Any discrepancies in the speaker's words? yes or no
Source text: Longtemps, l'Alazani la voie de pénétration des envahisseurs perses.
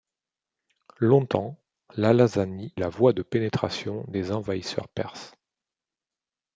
no